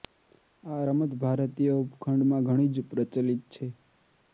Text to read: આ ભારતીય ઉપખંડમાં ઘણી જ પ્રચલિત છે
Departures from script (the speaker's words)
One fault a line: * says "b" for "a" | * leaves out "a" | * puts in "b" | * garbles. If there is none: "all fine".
* puts in "રમત"